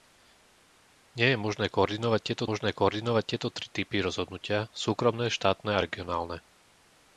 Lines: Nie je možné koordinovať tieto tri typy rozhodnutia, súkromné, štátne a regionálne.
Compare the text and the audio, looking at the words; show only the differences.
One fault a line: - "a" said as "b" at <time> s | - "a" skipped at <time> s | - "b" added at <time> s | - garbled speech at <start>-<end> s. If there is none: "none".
- "možné koordinovať tieto" added at 2.4 s